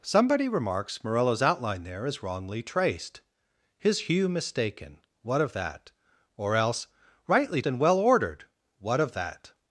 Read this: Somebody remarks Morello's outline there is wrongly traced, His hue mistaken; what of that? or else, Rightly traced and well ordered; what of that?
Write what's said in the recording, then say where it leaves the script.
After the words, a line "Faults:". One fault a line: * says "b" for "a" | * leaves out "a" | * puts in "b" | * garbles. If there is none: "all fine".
Somebody remarks Morello's outline there is wrongly traced, His hue mistaken; what of that? or else, Rightly and well ordered; what of that?
Faults:
* leaves out "traced"